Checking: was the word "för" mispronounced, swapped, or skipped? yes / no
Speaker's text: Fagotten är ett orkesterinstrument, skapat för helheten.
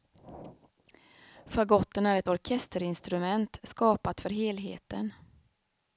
no